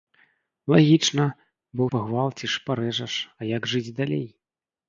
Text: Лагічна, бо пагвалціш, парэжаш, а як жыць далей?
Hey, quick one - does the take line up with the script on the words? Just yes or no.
yes